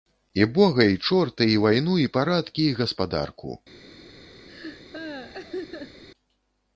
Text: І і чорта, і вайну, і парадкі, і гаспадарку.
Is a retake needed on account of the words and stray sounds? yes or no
yes